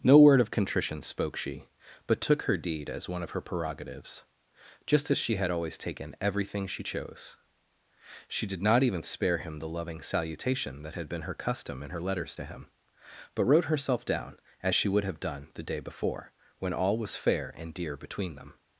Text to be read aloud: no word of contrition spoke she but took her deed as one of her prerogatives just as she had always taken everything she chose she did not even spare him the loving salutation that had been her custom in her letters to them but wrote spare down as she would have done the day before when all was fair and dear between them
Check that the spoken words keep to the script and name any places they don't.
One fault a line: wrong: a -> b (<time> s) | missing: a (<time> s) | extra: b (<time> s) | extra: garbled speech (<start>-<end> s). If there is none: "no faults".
wrong: them -> him (12.5 s)
wrong: spare -> herself (13.7 s)